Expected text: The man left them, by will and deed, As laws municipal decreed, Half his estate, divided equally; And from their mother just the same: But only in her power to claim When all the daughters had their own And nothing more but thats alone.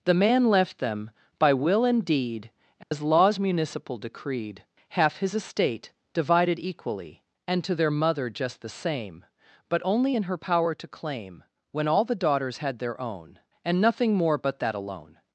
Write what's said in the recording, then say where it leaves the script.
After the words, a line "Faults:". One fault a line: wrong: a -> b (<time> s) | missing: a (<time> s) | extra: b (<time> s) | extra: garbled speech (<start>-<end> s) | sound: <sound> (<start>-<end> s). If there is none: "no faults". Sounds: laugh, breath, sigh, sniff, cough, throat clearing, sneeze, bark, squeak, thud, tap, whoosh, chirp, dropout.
The man left them, by will and deed, As laws municipal decreed, Half his estate, divided equally; And to their mother just the same: But only in her power to claim When all the daughters had their own And nothing more but that alone.
Faults:
sound: dropout (2.8-2.9 s)
wrong: from -> to (7.6 s)
wrong: thats -> that (14.6 s)